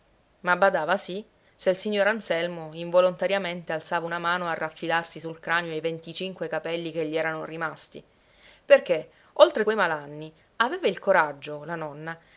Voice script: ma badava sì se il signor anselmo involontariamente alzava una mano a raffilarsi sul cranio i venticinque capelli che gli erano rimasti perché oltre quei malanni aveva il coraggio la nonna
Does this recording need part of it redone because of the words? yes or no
no